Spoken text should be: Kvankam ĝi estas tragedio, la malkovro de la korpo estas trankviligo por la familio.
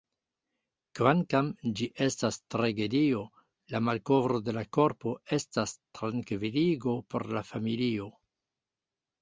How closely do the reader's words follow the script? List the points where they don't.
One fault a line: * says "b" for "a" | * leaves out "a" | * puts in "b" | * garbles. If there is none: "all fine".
all fine